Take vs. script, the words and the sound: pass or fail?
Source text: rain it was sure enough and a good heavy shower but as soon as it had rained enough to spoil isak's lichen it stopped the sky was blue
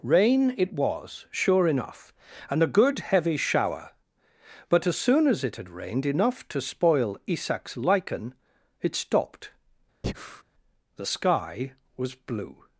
fail